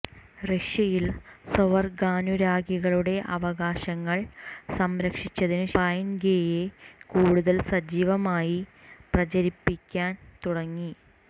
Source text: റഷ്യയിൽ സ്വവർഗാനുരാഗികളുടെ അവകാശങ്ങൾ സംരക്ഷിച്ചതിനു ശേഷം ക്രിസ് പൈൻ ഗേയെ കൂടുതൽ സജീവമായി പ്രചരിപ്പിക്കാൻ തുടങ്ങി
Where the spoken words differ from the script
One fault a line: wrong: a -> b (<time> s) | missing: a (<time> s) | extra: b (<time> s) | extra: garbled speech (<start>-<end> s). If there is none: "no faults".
missing: ശേഷം ക്രിസ് (5.7 s)